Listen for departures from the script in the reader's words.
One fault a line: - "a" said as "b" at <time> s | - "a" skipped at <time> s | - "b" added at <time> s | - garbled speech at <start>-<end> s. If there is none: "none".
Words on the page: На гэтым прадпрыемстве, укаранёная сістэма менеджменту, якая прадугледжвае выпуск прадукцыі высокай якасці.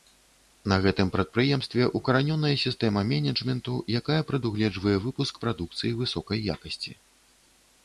none